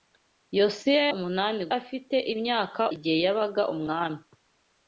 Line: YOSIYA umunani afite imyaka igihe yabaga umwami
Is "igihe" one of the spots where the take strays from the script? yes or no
no